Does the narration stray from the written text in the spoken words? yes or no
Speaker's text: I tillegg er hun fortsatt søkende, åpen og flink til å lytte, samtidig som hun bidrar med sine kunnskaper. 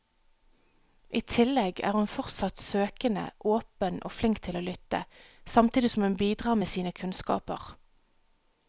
no